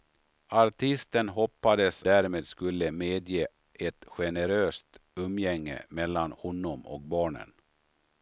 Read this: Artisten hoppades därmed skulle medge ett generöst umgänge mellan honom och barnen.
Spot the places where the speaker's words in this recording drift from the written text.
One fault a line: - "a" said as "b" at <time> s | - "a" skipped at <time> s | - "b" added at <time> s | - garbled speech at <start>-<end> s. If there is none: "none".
none